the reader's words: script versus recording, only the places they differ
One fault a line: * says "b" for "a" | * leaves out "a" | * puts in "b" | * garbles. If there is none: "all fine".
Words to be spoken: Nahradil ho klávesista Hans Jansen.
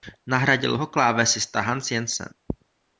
all fine